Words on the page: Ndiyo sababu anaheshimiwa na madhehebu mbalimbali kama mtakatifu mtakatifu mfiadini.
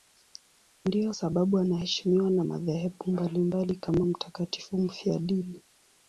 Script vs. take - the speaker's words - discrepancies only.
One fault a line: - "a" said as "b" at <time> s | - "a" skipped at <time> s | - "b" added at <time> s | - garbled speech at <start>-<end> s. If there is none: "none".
- "mtakatifu" skipped at 4.8 s